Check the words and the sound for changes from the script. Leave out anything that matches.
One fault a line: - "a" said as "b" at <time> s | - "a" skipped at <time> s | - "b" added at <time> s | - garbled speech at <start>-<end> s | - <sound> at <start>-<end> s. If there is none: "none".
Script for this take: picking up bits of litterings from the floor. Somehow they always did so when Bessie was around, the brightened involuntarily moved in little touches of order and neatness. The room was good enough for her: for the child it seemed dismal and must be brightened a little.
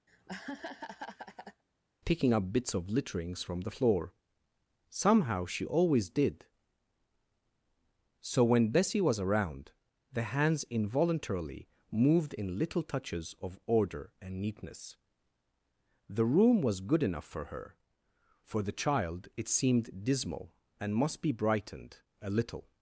- laugh at 0.1-1.6 s
- "they" said as "she" at 5.5 s
- "brightened" said as "hands" at 10.2 s